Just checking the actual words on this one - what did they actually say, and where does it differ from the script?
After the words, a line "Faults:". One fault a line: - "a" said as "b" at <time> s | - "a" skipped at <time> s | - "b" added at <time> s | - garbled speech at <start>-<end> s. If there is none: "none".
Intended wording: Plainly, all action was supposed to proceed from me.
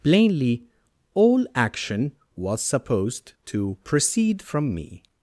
Plainly, all action was supposed to proceed from me.
Faults:
none